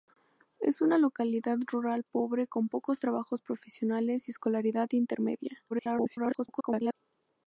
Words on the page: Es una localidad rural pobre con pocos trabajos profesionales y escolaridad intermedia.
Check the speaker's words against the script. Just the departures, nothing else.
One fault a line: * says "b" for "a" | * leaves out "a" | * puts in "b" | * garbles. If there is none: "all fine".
* garbles